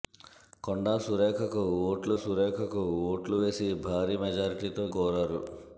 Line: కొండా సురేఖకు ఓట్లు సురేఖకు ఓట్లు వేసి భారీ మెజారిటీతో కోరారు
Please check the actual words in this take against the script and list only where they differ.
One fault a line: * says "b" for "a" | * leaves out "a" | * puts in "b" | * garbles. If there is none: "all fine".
all fine